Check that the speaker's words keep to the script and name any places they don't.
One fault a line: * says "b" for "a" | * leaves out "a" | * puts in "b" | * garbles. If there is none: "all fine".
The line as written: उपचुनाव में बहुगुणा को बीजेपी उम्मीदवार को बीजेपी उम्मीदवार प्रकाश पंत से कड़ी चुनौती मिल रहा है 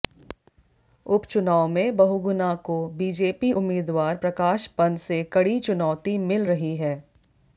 * leaves out "को बीजेपी उम्मीदवार"
* says "रही" for "रहा"